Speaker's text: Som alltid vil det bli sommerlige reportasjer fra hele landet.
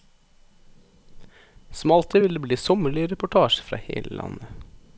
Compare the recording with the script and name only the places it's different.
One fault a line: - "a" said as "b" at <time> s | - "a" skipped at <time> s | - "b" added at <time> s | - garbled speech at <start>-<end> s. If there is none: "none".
none